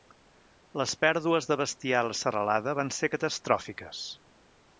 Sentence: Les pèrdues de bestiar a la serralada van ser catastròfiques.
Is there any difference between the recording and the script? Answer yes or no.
no